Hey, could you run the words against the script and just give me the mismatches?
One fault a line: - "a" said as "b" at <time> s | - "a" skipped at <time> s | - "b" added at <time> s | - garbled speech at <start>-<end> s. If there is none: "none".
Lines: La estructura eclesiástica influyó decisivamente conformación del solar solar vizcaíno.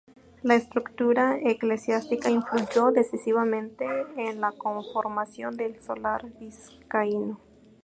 - "en la" added at 4.2 s
- "solar" skipped at 6.2 s